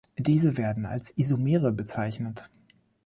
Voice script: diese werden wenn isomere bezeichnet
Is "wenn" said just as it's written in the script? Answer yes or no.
no